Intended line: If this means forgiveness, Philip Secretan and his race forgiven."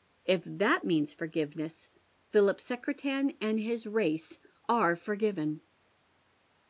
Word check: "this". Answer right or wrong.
wrong